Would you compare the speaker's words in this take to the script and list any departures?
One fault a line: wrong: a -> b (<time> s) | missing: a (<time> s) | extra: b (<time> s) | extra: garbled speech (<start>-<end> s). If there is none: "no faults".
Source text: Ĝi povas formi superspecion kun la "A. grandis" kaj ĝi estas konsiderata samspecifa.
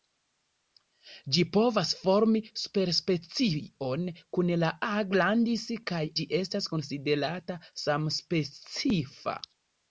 no faults